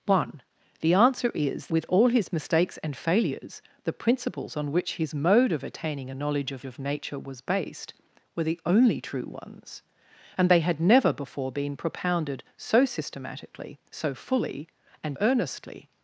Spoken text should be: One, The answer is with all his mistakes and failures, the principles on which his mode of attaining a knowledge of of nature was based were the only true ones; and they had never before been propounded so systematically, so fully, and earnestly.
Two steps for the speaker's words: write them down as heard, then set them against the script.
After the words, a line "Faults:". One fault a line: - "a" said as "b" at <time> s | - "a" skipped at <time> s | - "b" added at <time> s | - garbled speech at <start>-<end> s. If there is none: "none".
One, The answer is with all his mistakes and failures, the principles on which his mode of attaining a knowledge of of nature was based were the only true ones; and they had never before been propounded so systematically, so fully, and earnestly.
Faults:
none